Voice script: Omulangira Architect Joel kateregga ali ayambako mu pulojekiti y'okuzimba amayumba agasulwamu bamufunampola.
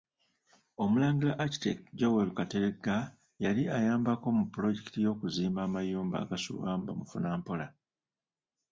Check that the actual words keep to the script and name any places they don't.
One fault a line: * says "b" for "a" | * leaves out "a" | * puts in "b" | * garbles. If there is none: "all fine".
* says "yali" for "ali"